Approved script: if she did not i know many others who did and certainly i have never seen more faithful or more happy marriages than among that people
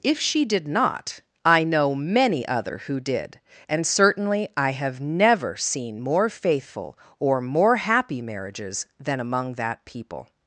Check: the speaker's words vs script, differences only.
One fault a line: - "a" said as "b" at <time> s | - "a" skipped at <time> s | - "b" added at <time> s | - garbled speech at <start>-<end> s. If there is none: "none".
- "others" said as "other" at 2.5 s